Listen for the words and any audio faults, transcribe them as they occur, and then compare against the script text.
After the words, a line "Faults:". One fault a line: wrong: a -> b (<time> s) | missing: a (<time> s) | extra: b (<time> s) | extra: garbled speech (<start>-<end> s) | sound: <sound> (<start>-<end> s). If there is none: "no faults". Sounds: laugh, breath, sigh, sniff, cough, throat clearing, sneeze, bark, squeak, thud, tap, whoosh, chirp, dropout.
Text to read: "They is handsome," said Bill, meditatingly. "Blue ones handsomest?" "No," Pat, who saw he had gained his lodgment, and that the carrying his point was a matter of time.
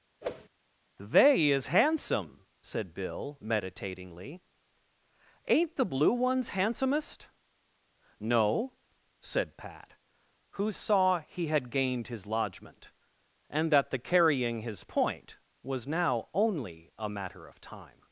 "They is handsome," said Bill, meditatingly. "Ain't the blue ones handsomest?" "No," said Pat, who saw he had gained his lodgment, and that the carrying his point was now only a matter of time.
Faults:
sound: whoosh (0.2-0.5 s)
extra: Ain't the (5.5 s)
extra: said (9.2 s)
extra: now only (15.9 s)